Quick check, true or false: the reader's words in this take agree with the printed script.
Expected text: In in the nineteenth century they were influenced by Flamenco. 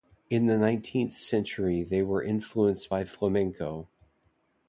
false